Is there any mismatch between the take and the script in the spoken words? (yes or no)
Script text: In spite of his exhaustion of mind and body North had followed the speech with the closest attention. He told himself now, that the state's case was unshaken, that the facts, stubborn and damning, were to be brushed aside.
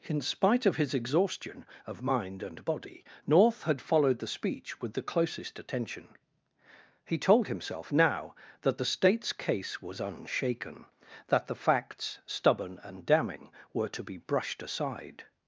no